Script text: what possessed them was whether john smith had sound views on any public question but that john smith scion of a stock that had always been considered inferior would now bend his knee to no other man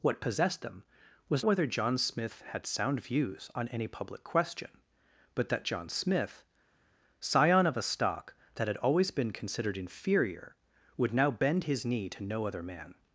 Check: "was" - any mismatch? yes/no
no